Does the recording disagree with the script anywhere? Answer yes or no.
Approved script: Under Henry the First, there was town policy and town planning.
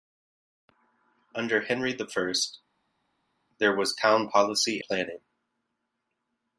yes